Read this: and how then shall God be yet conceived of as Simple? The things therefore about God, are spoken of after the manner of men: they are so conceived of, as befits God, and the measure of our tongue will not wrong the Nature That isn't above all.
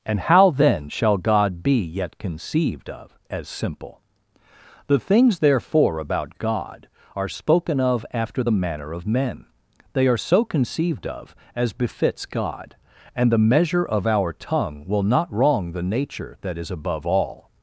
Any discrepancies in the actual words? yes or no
yes